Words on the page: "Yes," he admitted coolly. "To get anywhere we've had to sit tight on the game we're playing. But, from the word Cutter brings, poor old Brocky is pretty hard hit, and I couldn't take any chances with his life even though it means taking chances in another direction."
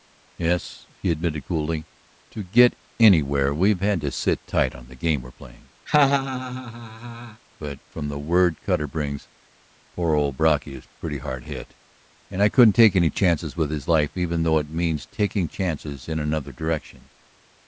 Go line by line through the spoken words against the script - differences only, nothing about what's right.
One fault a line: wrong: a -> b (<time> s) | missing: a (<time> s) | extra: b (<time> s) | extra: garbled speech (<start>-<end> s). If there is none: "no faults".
no faults